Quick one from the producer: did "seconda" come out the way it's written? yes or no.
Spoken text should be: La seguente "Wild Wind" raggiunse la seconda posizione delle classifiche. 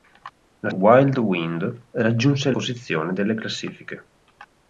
no